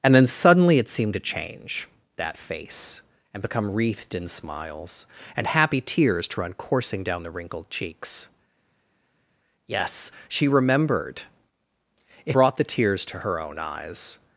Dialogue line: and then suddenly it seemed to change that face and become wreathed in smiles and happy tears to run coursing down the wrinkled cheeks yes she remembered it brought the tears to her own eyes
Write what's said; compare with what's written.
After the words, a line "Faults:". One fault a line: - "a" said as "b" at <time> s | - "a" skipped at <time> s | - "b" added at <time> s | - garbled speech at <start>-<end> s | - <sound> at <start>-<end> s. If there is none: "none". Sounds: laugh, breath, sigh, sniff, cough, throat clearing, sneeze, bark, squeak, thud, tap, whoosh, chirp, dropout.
and then suddenly it seemed to change that face and become wreathed in smiles and happy tears to run coursing down the wrinkled cheeks yes she remembered it brought the tears to her own eyes
Faults:
none